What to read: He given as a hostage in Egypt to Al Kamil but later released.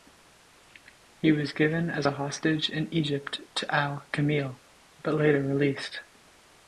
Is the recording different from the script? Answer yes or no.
yes